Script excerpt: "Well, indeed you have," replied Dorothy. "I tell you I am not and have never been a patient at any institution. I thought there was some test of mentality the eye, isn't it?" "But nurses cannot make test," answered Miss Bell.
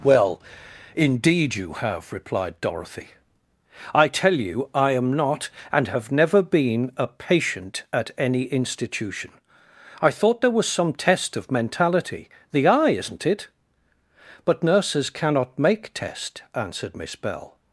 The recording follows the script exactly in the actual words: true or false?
true